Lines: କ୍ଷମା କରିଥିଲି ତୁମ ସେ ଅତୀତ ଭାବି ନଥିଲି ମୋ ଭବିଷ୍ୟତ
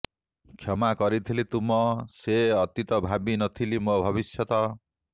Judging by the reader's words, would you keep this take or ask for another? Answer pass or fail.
pass